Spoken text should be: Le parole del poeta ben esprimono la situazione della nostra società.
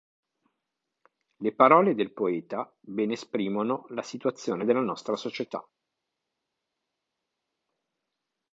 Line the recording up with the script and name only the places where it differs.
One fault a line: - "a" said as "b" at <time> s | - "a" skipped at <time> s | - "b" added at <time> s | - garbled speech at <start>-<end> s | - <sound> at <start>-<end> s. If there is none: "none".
none